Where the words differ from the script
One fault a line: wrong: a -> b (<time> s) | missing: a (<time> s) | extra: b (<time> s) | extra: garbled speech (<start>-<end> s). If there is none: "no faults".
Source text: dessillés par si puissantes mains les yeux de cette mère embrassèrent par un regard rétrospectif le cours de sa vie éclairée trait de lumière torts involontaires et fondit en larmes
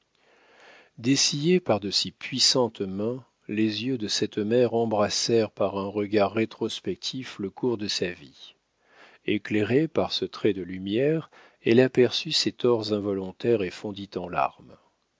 extra: de (1.8 s)
extra: par ce (9.9 s)
extra: elle aperçut ses (11.6 s)